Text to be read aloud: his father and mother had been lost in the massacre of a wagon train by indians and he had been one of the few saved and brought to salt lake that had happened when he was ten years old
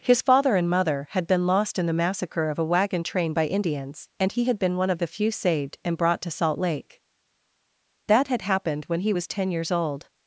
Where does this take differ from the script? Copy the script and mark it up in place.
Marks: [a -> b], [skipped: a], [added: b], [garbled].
his father and mother had been lost in the massacre of a wagon train by indians and he had been one of the few saved and brought to salt lake that had happened when he was ten years old